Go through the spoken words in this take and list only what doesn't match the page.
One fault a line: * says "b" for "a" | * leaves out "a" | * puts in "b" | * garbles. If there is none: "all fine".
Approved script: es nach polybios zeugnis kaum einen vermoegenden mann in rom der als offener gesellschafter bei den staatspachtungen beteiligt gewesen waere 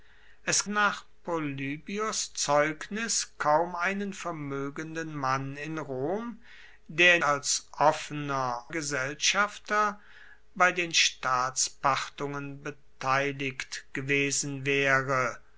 all fine